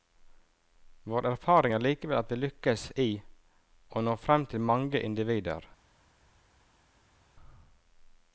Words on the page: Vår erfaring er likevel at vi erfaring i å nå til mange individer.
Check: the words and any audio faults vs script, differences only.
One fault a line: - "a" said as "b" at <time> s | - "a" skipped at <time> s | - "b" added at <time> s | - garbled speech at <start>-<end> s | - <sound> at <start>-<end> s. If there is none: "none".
- "erfaring" said as "lykkes" at 2.4 s
- "frem" added at 4.2 s